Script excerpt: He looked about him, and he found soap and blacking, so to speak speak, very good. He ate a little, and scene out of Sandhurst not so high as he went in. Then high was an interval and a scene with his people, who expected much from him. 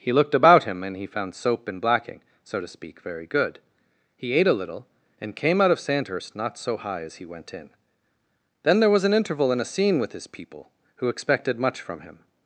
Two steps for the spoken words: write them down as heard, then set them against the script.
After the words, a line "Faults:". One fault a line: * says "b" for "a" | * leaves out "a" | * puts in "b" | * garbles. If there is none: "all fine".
He looked about him, and he found soap and blacking, so to speak, very good. He ate a little, and came out of Sandhurst not so high as he went in. Then there was an interval and a scene with his people, who expected much from him.
Faults:
* leaves out "speak"
* says "came" for "scene"
* says "there" for "high"